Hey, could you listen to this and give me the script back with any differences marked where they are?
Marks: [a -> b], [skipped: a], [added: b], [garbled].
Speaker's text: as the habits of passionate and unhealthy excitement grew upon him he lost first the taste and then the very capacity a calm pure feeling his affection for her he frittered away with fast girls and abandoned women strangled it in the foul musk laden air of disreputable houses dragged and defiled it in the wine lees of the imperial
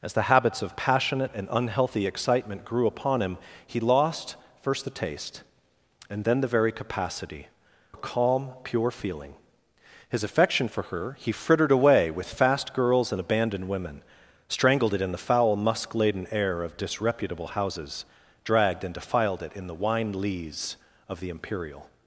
as the habits of passionate and unhealthy excitement grew upon him he lost first the taste and then the very capacity a calm pure feeling his affection for her he frittered away with fast girls and abandoned women strangled it in the foul musk laden air of disreputable houses dragged and defiled it in the wine lees of the imperial